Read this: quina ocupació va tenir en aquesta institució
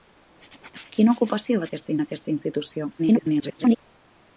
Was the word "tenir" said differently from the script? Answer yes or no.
yes